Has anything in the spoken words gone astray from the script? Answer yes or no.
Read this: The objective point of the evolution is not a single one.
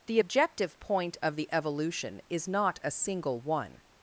no